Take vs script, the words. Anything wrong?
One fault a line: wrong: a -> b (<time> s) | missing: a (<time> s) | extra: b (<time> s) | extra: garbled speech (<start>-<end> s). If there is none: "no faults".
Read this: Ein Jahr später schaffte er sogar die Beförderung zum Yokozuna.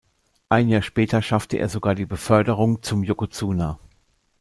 no faults